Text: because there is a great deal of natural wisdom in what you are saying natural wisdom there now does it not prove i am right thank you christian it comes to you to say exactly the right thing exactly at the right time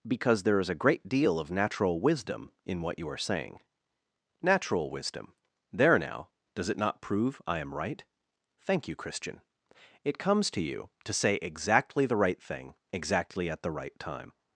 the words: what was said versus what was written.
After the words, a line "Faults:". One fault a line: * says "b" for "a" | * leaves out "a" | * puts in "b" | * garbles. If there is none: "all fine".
because there is a great deal of natural wisdom in what you are saying natural wisdom there now does it not prove i am right thank you christian it comes to you to say exactly the right thing exactly at the right time
Faults:
all fine